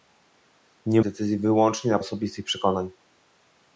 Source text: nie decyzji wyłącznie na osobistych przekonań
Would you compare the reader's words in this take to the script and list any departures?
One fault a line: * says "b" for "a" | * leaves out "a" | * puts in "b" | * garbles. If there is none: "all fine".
all fine